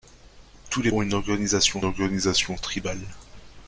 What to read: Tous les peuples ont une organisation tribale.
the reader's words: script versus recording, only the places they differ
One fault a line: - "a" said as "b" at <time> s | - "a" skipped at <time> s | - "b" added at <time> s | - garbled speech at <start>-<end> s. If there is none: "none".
- "peuples" skipped at 0.9 s
- "organisation" added at 1.8 s